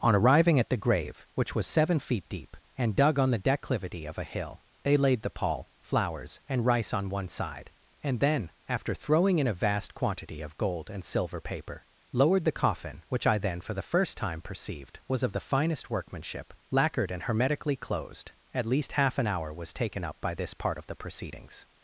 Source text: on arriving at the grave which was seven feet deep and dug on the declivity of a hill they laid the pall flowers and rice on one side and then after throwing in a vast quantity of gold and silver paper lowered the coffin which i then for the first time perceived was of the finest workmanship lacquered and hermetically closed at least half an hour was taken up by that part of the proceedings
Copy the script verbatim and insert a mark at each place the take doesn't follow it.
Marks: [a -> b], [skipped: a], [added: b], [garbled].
on arriving at the grave which was seven feet deep and dug on the declivity of a hill they laid the pall flowers and rice on one side and then after throwing in a vast quantity of gold and silver paper lowered the coffin which i then for the first time perceived was of the finest workmanship lacquered and hermetically closed at least half an hour was taken up by [that -> this] part of the proceedings